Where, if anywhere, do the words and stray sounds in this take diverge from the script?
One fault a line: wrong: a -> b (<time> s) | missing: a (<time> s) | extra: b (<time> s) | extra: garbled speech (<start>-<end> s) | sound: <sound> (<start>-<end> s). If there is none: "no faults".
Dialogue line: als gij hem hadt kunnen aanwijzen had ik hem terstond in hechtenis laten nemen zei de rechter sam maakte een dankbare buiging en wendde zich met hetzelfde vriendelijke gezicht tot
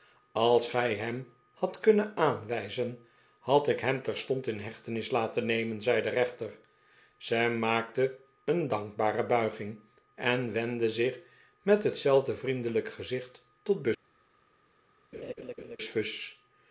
sound: laugh (15.1-15.8 s)